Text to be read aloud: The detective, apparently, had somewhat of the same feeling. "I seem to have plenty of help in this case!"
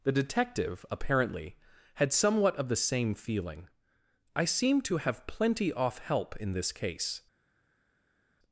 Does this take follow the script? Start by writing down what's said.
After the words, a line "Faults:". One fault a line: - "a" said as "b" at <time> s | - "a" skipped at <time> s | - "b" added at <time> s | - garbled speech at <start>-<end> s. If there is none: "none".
The detective, apparently, had somewhat of the same feeling. "I seem to have plenty off help in this case!"
Faults:
- "of" said as "off" at 5.7 s